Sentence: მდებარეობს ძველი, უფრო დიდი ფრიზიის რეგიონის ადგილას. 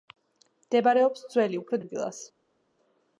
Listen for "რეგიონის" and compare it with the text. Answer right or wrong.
wrong